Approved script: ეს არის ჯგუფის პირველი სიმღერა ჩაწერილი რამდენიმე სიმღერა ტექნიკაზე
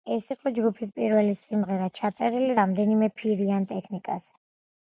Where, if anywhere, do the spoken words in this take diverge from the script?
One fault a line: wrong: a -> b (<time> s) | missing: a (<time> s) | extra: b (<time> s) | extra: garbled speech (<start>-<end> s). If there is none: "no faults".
wrong: არის -> იყო (0.3 s)
wrong: სიმღერა -> ფირიან (3.2 s)